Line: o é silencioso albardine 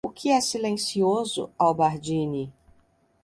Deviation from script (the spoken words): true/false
true